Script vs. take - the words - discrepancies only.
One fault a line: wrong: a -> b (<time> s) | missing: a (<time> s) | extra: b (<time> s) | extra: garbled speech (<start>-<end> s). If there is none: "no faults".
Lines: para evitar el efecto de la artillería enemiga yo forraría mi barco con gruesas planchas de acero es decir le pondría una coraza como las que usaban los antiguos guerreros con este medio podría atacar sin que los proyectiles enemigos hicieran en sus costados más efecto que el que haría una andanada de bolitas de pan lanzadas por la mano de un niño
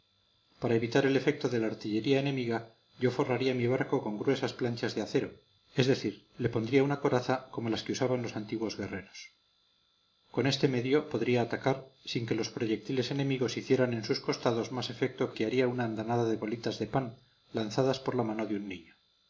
missing: el (15.4 s)